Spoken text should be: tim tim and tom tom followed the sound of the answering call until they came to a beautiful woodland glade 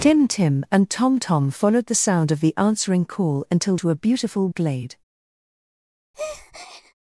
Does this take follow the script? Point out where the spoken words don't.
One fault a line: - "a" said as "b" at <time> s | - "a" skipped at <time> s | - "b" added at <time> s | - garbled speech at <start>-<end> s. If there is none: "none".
- "they came" skipped at 3.8 s
- "woodland" skipped at 4.5 s